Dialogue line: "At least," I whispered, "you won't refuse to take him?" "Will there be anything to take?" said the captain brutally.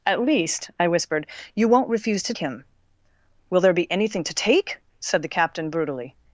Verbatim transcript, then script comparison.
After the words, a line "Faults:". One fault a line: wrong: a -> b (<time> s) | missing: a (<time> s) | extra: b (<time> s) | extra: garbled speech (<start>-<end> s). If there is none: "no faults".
"At least," I whispered, "you won't refuse to him?" "Will there be anything to take?" said the captain brutally.
Faults:
missing: take (2.3 s)